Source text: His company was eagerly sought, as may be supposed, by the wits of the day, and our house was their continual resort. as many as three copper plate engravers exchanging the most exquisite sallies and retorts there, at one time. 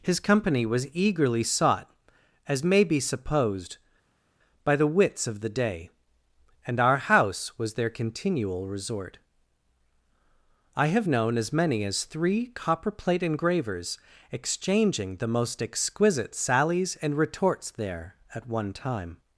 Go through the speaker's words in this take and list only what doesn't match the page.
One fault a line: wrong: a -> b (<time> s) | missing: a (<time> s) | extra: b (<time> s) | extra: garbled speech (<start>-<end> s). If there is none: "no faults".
extra: I have known (10.8 s)